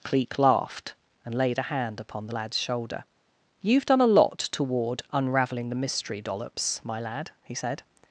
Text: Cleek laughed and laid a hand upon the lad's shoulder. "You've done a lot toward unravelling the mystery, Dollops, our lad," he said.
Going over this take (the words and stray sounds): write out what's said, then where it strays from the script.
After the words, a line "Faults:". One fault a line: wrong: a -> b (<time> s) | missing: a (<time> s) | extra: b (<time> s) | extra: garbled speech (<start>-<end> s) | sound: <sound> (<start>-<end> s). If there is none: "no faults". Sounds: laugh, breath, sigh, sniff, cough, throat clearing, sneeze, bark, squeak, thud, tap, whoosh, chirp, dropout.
Cleek laughed and laid a hand upon the lad's shoulder. "You've done a lot toward unravelling the mystery, Dollops, my lad," he said.
Faults:
wrong: our -> my (6.8 s)